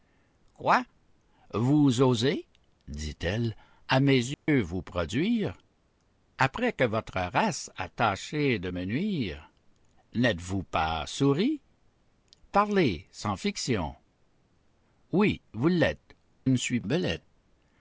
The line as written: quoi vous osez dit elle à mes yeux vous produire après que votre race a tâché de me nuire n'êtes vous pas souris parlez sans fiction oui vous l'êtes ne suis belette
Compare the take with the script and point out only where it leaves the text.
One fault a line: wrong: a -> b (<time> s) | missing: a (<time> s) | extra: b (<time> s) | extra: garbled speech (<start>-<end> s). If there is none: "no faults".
no faults